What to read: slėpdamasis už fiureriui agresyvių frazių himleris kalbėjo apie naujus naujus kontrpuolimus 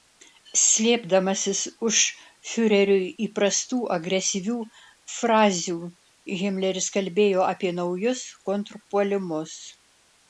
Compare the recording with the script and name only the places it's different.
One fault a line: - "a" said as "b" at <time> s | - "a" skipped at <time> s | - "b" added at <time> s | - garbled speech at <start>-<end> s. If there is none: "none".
- "įprastų" added at 3.2 s
- "naujus" skipped at 8.2 s